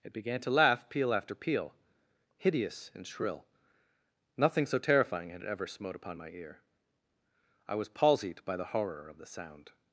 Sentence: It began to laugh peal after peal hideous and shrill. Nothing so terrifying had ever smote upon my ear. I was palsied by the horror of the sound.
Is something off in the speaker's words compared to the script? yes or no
no